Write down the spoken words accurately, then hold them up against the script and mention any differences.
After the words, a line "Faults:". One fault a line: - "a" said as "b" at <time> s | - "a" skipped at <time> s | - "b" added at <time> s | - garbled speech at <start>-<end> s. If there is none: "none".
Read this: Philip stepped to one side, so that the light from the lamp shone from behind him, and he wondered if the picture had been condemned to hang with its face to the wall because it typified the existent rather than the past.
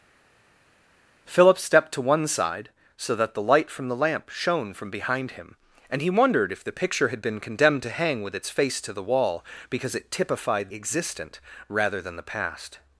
Philip stepped to one side, so that the light from the lamp shone from behind him, and he wondered if the picture had been condemned to hang with its face to the wall because it typified existent rather than the past.
Faults:
- "the" skipped at 10.7 s